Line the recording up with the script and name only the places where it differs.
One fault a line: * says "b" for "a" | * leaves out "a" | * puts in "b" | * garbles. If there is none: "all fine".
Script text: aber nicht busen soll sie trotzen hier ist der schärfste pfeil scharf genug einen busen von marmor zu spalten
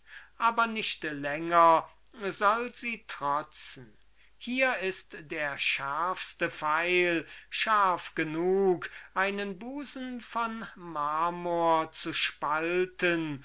* says "länger" for "busen"